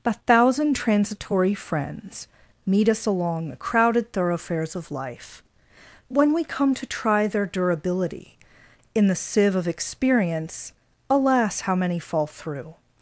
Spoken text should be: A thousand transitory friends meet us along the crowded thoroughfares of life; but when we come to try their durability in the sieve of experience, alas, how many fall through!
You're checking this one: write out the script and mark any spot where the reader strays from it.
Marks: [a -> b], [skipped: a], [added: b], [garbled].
A thousand transitory friends meet us along the crowded thoroughfares of life; [skipped: but] when we come to try their durability in the sieve of experience, alas, how many fall through!